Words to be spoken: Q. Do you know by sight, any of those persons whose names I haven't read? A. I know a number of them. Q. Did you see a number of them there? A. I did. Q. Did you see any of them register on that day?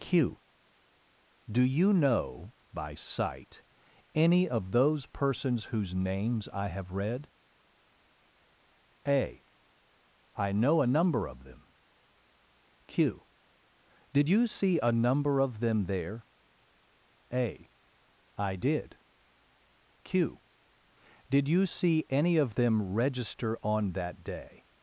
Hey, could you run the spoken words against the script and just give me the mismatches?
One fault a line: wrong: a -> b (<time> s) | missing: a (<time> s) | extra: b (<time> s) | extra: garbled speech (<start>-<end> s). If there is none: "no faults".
wrong: haven't -> have (6.7 s)